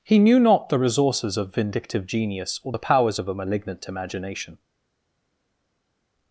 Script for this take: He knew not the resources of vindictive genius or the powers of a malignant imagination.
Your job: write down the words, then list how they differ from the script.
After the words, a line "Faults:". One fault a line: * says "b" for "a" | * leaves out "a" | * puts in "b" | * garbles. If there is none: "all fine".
He knew not the resources of vindictive genius or the powers of a malignant imagination.
Faults:
all fine